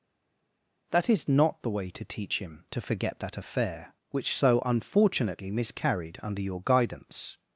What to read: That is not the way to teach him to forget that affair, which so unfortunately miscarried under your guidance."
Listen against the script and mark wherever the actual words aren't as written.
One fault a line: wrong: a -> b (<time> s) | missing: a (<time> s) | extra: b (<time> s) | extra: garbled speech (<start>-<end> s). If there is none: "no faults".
no faults